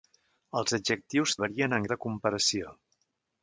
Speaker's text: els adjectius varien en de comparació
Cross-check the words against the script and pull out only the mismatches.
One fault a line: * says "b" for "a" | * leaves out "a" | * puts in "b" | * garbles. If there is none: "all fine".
all fine